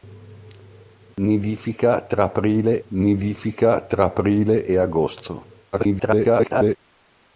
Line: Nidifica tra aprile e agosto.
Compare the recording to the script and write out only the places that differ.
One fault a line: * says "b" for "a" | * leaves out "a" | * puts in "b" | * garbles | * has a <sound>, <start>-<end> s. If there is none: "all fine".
* has a dropout, 1.1-1.2 s
* puts in "nidifica tra aprile"
* garbles